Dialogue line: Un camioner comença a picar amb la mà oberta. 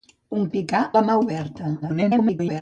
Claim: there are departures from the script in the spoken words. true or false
true